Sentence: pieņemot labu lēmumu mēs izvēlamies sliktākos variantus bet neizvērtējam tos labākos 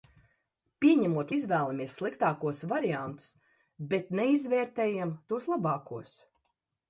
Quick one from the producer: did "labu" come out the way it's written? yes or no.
no